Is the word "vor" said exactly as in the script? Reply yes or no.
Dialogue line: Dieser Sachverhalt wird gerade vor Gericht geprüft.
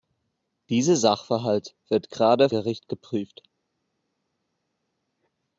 no